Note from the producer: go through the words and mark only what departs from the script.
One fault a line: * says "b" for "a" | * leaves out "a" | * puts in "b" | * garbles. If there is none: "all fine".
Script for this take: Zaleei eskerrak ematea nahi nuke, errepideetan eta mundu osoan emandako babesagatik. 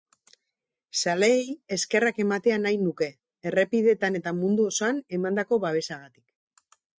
all fine